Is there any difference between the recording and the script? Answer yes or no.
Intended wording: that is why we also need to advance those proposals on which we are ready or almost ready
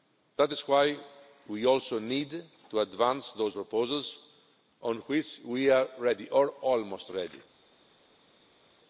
no